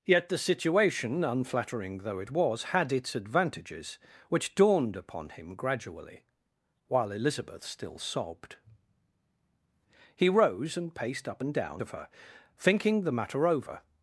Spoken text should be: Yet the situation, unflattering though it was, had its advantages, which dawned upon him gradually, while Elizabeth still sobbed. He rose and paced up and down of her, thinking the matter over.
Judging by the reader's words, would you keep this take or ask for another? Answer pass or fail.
pass